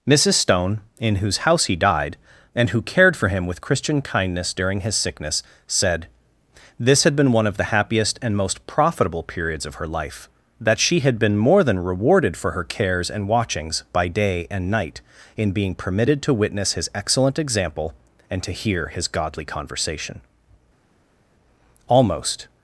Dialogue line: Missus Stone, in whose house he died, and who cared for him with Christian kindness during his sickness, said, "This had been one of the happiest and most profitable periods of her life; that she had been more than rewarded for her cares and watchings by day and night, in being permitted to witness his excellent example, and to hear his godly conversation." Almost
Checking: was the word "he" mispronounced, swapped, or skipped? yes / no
no